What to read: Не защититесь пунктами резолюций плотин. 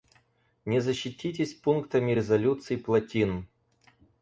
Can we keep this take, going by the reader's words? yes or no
yes